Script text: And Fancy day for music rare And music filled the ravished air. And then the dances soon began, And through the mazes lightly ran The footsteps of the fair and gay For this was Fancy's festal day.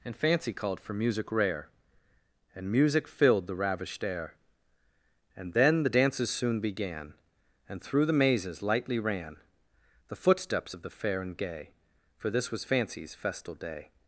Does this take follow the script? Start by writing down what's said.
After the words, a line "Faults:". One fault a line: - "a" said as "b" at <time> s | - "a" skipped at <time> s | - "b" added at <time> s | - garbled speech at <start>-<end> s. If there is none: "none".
And Fancy called for music rare And music filled the ravished air. And then the dances soon began, And through the mazes lightly ran The footsteps of the fair and gay For this was Fancy's festal day.
Faults:
- "day" said as "called" at 0.5 s